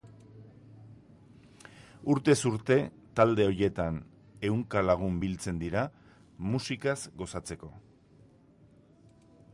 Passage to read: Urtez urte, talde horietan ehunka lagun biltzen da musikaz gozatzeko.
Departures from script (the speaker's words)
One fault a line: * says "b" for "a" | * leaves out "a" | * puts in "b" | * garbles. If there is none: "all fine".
* says "dira" for "da"